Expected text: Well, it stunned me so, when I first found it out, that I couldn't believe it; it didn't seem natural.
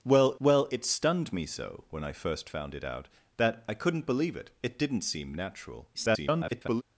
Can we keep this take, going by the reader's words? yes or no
no